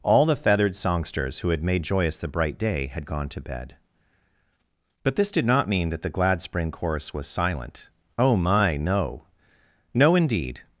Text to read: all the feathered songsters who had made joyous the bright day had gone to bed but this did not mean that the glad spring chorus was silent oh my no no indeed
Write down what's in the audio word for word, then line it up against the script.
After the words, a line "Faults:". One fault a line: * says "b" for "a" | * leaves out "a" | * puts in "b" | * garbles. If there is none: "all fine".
all the feathered songsters who had made joyous the bright day had gone to bed but this did not mean that the glad spring chorus was silent oh my no no indeed
Faults:
all fine